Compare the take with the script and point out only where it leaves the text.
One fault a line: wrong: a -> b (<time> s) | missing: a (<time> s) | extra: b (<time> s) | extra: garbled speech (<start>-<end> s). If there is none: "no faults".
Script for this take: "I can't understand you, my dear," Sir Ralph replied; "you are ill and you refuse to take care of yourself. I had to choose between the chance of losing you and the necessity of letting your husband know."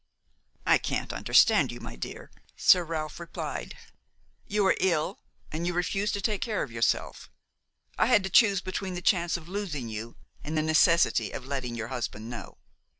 no faults